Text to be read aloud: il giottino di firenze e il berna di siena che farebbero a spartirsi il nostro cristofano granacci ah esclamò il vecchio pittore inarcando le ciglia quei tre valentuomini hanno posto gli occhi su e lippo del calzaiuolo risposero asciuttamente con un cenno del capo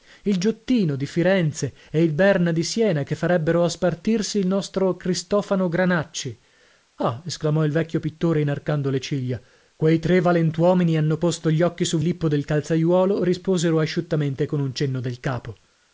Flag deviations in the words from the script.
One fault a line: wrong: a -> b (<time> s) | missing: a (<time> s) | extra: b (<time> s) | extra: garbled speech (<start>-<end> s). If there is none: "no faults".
no faults